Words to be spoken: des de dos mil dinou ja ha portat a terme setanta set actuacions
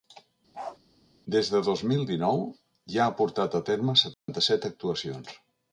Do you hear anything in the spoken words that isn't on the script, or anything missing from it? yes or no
no